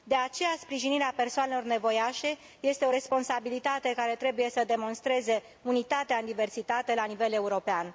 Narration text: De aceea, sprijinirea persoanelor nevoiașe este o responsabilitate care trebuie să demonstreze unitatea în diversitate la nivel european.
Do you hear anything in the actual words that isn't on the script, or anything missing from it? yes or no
no